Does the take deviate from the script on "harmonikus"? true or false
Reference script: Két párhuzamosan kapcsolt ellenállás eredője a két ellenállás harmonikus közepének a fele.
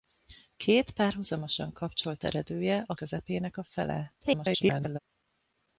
true